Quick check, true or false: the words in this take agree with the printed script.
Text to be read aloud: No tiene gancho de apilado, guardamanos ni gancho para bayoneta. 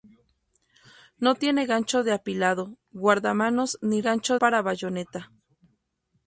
true